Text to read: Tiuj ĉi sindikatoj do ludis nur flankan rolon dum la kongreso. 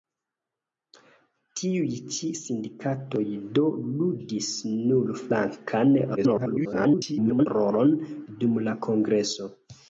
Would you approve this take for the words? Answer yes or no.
no